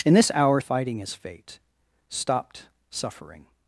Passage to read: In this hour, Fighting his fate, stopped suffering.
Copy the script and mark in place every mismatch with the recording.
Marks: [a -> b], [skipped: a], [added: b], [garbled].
In this hour, Fighting his fate, stopped suffering.